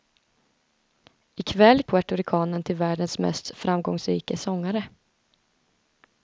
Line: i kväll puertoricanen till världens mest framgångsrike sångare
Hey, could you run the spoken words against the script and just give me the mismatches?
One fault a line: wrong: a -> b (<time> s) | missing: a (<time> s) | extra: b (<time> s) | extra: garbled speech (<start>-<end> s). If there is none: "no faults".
no faults